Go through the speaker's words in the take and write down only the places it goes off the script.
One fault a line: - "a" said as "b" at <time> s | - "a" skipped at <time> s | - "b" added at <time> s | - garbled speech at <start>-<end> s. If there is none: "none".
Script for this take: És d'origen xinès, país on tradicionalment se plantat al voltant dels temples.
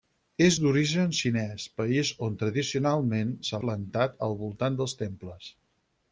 none